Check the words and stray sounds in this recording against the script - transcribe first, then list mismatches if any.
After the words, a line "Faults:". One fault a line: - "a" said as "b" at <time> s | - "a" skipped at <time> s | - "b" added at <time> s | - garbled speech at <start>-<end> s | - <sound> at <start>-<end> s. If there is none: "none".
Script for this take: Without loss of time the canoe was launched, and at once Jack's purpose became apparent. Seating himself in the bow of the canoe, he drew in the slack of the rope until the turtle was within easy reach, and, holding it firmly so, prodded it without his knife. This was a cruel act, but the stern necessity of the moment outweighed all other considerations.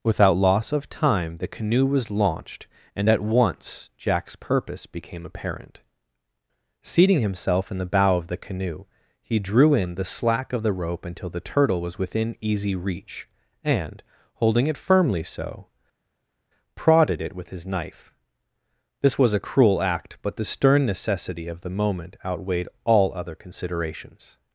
Without loss of time the canoe was launched, and at once Jack's purpose became apparent. Seating himself in the bow of the canoe, he drew in the slack of the rope until the turtle was within easy reach, and, holding it firmly so, prodded it with his knife. This was a cruel act, but the stern necessity of the moment outweighed all other considerations.
Faults:
- "without" said as "with" at 17.3 s